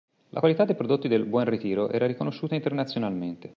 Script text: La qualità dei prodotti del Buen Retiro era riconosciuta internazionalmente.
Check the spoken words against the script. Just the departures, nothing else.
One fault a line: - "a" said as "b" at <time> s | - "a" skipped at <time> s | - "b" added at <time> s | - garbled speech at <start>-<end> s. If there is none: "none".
none